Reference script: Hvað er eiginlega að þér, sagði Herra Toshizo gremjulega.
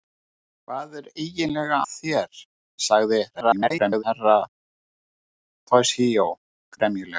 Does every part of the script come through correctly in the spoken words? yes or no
no